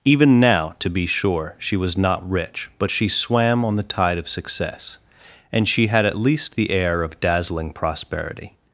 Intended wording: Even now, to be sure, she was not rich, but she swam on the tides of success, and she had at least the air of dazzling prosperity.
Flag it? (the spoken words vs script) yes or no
yes